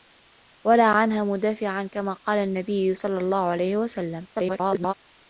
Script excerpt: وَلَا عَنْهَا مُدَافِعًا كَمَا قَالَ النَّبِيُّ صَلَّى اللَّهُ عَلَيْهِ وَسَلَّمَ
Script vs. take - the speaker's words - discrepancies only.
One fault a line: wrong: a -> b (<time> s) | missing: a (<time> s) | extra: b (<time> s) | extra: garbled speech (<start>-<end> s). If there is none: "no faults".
extra: garbled speech (4.3-4.9 s)